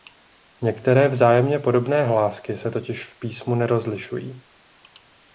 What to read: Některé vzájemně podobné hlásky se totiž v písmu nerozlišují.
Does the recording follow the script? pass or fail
pass